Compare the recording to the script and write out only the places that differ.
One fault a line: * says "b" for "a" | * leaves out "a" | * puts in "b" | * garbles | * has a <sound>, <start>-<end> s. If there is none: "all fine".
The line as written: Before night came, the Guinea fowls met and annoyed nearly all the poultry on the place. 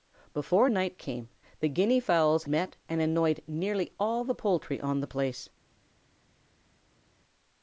all fine